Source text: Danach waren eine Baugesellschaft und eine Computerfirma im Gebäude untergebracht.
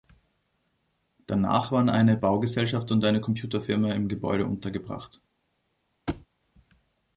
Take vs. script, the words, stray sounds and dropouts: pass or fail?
fail